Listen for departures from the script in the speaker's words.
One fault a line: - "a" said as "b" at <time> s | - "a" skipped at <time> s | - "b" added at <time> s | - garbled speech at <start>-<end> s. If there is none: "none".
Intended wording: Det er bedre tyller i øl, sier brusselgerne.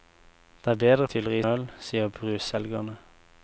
none